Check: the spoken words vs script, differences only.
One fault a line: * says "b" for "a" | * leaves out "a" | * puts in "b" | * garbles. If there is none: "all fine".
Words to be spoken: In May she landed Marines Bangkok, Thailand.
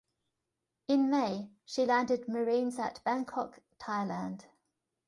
* puts in "at"